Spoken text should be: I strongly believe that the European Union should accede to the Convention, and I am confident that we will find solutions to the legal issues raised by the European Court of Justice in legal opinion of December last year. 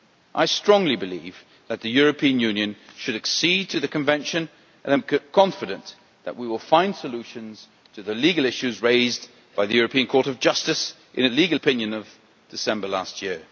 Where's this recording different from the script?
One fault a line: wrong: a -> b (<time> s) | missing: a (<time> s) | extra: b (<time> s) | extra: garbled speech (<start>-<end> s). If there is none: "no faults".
no faults